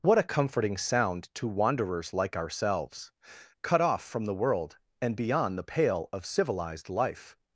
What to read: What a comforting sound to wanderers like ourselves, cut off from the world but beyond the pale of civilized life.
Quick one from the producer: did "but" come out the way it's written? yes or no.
no